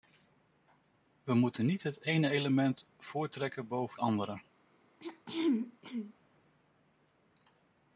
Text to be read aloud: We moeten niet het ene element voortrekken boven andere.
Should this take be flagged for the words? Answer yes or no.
no